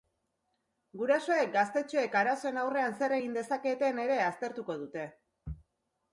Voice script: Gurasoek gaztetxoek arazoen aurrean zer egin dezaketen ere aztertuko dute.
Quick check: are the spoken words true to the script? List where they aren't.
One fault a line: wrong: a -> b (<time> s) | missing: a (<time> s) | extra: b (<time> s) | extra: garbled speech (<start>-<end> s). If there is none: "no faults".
no faults